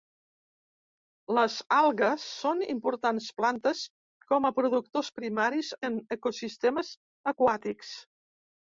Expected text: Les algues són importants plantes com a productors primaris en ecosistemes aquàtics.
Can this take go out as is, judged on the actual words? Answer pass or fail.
pass